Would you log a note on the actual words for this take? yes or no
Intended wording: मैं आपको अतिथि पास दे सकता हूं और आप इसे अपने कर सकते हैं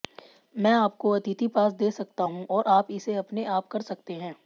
yes